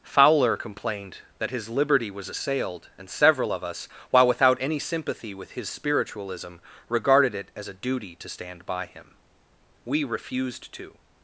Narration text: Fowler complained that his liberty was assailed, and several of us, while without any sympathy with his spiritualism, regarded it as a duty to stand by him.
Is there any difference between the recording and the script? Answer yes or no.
yes